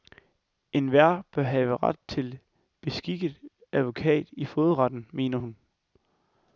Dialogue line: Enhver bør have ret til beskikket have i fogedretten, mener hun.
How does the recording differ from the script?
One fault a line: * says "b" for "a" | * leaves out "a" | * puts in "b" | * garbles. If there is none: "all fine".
* says "advokat" for "have"